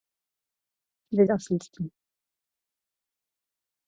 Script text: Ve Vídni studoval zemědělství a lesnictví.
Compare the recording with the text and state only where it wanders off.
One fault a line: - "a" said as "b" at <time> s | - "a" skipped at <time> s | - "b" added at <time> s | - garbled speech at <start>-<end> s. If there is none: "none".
- "Vídni studoval zemědělství" skipped at 1.2 s